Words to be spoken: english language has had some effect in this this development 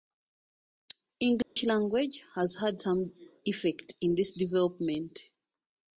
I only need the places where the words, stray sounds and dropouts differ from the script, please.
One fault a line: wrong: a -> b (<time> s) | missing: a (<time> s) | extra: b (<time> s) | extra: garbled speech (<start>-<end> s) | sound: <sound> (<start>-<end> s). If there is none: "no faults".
sound: dropout (1.4-1.6 s)
missing: this (4.3 s)